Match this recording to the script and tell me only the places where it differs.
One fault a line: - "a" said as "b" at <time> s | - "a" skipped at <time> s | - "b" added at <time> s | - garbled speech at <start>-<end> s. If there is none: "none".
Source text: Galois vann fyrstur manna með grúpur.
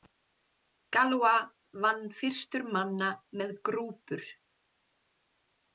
none